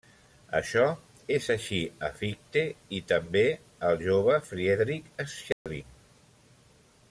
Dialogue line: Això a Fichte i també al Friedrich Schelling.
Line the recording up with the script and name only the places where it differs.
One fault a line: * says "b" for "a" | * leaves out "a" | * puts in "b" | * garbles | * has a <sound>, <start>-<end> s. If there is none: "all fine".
* puts in "és així"
* puts in "jove"
* has a dropout, 5.5-5.7 s